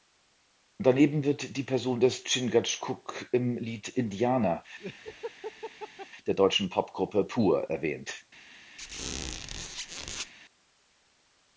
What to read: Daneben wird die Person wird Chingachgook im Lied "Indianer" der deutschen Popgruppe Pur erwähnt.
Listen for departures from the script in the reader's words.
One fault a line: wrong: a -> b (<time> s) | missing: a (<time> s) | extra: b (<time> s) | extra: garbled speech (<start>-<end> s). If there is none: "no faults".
wrong: wird -> des (2.0 s)